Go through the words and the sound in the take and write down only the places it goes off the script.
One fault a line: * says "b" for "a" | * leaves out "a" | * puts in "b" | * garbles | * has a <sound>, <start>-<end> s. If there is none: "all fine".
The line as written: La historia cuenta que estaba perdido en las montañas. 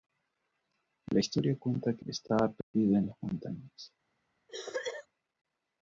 * has a dropout, 2.6-2.7 s
* has a cough, 4.5-5.1 s